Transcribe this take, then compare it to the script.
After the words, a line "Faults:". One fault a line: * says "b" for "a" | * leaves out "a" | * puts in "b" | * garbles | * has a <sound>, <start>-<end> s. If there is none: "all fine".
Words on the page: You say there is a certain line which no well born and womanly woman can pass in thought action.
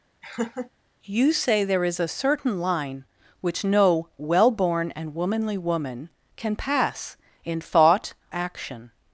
You say there is a certain line which no well born and womanly woman can pass in thought action.
Faults:
* has a laugh, 0.2-0.7 s